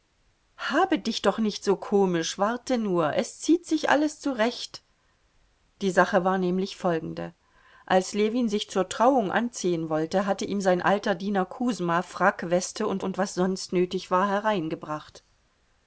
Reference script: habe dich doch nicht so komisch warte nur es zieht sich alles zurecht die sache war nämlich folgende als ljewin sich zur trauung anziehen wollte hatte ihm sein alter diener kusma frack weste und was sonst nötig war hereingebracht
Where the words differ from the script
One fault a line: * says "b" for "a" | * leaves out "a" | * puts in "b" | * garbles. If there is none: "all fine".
* puts in "und"